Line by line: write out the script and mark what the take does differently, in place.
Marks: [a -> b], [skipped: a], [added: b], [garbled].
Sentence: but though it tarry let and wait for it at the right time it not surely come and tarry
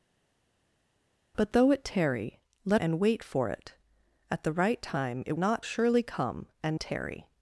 but though it tarry let and wait for it at the right time it not surely come and tarry